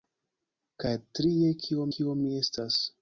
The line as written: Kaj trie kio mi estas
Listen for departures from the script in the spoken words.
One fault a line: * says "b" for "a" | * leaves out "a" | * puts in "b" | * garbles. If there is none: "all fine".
* puts in "kio"